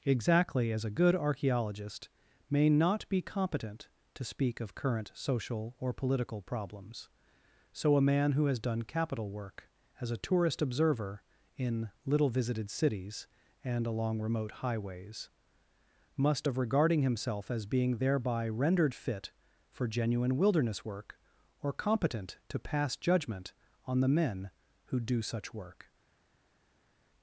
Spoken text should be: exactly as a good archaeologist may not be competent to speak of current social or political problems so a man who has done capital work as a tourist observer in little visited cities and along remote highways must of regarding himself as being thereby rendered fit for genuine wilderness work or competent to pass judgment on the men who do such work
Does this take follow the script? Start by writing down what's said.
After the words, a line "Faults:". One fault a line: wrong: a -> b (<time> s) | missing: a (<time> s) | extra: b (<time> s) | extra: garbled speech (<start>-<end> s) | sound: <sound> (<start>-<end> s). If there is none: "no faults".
exactly as a good archaeologist may not be competent to speak of current social or political problems so a man who has done capital work as a tourist observer in little visited cities and along remote highways must of regarding himself as being thereby rendered fit for genuine wilderness work or competent to pass judgment on the men who do such work
Faults:
no faults